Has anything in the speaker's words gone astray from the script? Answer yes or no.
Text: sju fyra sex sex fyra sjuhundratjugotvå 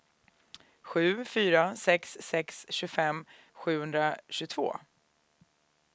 yes